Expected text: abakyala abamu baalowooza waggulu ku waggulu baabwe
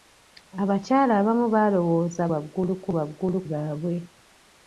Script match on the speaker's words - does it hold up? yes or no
yes